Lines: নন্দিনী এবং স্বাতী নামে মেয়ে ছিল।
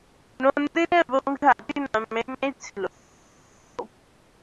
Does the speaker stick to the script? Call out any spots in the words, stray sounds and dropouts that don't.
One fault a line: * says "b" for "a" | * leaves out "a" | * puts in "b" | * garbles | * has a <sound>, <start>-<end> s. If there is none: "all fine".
all fine